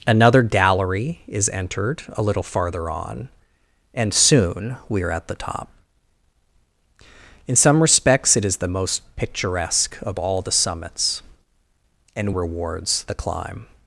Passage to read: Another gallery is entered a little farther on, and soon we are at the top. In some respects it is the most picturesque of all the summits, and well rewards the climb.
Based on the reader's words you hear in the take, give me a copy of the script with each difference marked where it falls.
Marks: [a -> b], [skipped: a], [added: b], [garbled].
Another gallery is entered a little farther on, and soon we are at the top. In some respects it is the most picturesque of all the summits, and [skipped: well] rewards the climb.